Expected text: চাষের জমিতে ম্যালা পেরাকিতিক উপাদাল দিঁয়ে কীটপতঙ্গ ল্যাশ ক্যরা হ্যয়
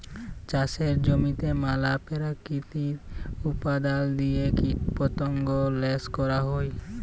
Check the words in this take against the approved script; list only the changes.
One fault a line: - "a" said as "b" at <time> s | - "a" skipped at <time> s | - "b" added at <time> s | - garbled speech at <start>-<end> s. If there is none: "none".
none